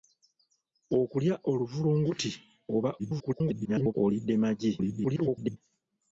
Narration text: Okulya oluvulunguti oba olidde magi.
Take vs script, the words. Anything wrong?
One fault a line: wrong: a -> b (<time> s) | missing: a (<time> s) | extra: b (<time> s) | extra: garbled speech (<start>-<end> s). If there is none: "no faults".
extra: garbled speech (3.0-3.9 s)
extra: garbled speech (4.8-5.6 s)